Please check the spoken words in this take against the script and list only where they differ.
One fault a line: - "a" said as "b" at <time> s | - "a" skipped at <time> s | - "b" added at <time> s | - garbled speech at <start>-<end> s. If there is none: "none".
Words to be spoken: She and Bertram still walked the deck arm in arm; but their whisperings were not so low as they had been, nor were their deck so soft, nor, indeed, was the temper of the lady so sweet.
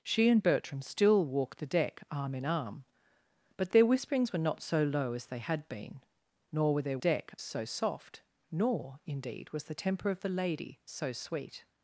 none